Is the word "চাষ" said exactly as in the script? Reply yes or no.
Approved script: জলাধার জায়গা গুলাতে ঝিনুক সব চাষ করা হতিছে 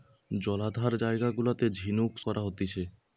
no